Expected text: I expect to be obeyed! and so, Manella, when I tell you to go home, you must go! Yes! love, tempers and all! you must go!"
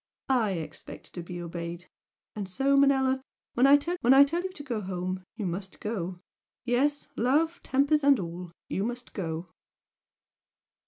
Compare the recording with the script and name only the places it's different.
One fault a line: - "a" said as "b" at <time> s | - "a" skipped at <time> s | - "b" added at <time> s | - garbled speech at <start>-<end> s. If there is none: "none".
- "when I tell" added at 4.0 s